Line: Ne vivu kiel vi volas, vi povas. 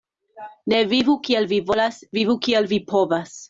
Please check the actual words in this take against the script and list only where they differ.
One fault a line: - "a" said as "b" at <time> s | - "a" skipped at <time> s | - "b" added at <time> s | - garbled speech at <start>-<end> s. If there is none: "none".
- "vivu kiel" added at 2.2 s